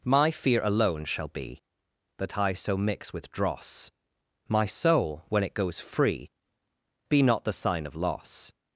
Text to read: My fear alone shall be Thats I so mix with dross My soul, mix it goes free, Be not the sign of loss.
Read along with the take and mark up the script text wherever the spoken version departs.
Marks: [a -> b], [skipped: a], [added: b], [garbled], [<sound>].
My fear alone shall be [Thats -> That] I so mix with dross My soul, [mix -> when] it goes free, Be not the sign of loss.